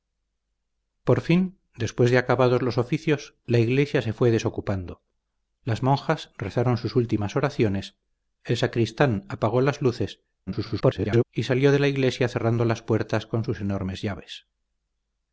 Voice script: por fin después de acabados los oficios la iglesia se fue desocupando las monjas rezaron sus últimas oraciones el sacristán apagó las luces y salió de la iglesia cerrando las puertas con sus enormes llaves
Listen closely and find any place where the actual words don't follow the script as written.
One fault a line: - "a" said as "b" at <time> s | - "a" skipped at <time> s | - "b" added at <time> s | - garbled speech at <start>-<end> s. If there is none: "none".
- garbled speech at 10.5-11.2 s